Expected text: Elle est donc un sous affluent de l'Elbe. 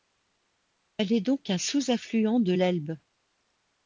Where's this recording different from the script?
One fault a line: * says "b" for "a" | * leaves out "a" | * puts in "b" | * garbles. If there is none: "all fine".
all fine